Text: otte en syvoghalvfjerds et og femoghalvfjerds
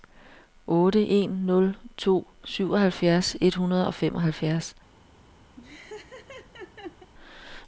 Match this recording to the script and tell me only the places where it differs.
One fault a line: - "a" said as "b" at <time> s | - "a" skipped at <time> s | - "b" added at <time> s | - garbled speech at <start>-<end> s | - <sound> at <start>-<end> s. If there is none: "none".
- "nul to" added at 1.3 s
- "hundrede" added at 3.5 s
- laugh at 5.6-7.1 s